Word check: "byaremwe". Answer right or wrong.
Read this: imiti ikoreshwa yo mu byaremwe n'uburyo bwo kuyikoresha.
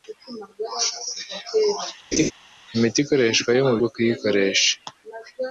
wrong